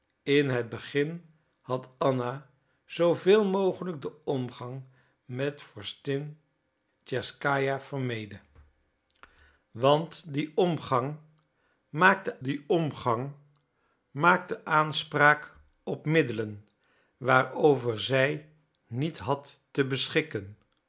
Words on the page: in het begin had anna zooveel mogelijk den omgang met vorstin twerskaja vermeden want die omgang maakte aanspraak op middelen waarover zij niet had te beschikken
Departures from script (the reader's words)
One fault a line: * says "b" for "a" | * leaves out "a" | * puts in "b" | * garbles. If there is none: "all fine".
* puts in "die omgang maakte"